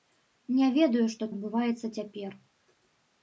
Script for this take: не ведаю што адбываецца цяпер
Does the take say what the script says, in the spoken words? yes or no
yes